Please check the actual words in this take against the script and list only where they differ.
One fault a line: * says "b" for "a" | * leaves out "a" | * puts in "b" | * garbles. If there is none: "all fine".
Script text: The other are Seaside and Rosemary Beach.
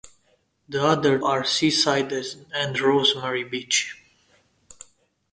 all fine